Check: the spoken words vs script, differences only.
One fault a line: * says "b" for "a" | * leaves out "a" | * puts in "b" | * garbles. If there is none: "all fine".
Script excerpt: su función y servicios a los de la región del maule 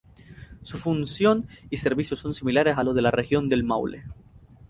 * puts in "son similares"